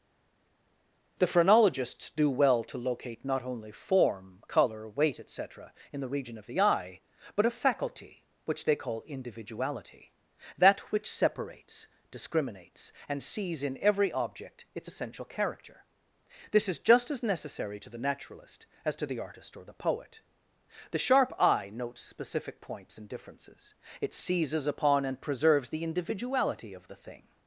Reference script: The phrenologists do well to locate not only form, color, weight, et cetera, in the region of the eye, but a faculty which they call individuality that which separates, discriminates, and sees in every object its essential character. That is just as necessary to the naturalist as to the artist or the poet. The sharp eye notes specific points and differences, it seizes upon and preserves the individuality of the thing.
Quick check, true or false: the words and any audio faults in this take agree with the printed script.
false